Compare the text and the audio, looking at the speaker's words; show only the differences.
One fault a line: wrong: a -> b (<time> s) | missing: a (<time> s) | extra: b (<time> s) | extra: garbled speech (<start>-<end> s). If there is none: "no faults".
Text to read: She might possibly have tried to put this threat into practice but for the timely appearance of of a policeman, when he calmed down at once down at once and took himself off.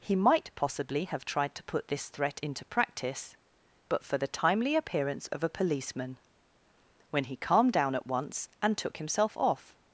wrong: She -> He (0.0 s)
missing: of (5.4 s)
missing: down at once (8.5 s)